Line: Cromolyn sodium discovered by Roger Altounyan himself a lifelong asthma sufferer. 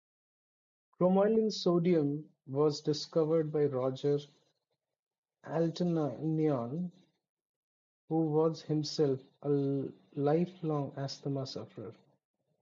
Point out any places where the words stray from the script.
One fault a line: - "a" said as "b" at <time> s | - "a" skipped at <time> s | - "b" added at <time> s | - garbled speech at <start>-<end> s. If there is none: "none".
- "was" added at 2.5 s
- "who was" added at 8.1 s